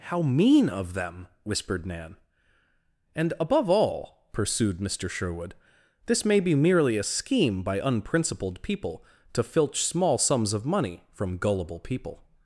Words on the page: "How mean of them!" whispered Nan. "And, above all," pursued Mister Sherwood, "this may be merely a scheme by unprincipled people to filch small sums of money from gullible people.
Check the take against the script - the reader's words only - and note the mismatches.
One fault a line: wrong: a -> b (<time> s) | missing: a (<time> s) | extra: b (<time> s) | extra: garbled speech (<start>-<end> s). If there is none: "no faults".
no faults